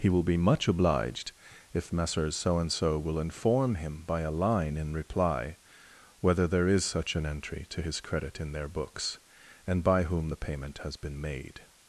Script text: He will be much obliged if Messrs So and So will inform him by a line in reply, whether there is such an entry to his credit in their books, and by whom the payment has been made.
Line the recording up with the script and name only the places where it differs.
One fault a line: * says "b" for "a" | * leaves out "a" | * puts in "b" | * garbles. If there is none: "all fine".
all fine